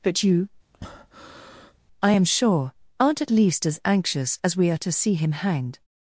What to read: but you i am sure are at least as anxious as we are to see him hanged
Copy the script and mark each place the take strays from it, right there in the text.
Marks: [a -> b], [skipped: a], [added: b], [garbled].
but you i am sure [are -> aren't] at least as anxious as we are to see him hanged